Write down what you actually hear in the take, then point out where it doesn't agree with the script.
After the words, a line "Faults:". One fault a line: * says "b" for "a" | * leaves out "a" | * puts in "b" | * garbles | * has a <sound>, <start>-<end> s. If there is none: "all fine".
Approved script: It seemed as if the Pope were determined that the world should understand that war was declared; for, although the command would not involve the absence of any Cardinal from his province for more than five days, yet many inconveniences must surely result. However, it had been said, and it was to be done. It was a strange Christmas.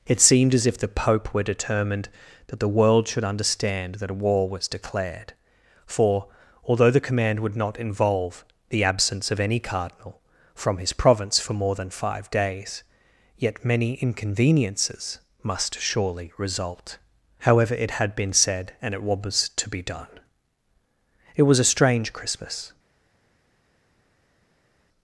It seemed as if the Pope were determined that the world should understand that a war was declared; for, although the command would not involve the absence of any Cardinal from his province for more than five days, yet many inconveniences must surely result. However, it had been said, and it was to be done. It was a strange Christmas.
Faults:
* puts in "a"